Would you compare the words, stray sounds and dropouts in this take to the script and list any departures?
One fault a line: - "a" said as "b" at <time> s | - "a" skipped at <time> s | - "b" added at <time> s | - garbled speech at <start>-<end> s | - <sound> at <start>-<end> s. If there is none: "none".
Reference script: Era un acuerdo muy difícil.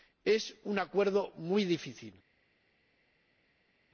- "Era" said as "Es" at 0.2 s